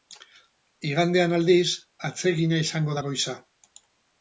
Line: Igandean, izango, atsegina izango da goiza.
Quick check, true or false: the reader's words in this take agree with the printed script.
false